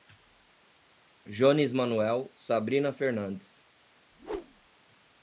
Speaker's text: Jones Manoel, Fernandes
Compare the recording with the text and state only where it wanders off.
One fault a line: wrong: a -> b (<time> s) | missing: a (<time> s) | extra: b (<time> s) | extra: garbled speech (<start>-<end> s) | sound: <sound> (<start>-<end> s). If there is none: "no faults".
extra: Sabrina (2.3 s)
sound: whoosh (4.1-4.7 s)